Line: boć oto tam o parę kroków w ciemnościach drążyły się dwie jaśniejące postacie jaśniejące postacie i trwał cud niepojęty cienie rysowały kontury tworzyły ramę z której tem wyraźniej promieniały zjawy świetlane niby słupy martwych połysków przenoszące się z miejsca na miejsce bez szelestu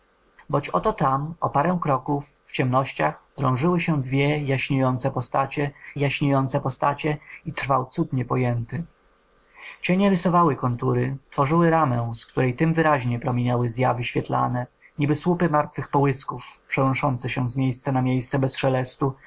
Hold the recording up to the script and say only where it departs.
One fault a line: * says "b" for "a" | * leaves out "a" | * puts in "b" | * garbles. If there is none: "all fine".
all fine